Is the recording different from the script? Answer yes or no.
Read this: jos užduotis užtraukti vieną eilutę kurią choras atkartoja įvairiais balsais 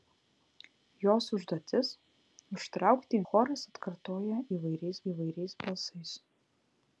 yes